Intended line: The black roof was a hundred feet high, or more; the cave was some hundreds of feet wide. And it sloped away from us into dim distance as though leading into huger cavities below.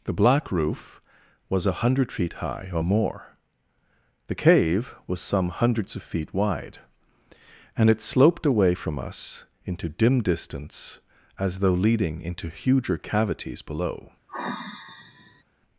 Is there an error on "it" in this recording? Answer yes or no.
no